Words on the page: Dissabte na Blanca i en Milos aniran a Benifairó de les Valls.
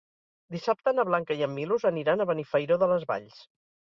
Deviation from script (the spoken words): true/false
false